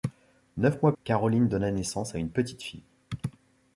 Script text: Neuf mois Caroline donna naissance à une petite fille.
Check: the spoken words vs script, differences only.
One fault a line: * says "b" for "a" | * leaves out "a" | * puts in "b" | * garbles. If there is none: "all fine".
all fine